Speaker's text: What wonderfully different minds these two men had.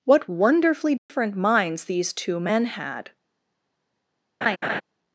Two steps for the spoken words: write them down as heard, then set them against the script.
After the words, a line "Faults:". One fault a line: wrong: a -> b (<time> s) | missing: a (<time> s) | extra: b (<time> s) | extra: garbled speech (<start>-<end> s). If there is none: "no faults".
What wonderfully different minds these two men had.
Faults:
no faults